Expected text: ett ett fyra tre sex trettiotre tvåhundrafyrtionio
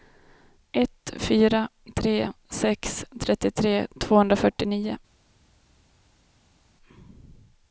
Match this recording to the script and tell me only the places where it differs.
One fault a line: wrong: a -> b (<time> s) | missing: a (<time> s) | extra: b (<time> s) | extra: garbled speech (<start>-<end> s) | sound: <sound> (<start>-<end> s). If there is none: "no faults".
missing: ett (1.1 s)